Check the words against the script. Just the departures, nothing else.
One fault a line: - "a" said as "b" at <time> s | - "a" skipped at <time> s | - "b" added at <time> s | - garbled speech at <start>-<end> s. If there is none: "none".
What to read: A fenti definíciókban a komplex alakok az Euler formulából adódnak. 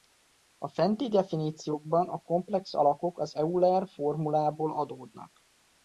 none